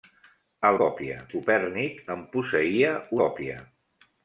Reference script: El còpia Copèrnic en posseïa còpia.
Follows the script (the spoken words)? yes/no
yes